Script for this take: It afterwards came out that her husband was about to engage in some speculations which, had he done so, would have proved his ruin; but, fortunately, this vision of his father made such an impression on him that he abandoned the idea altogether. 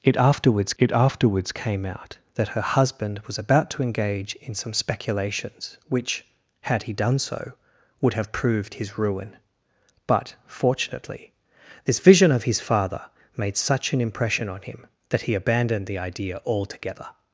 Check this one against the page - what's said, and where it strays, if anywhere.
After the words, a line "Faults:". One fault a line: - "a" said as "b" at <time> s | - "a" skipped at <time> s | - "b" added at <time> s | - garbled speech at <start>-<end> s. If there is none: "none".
It afterwards it afterwards came out that her husband was about to engage in some speculations which, had he done so, would have proved his ruin; but, fortunately, this vision of his father made such an impression on him that he abandoned the idea altogether.
Faults:
- "it afterwards" added at 0.8 s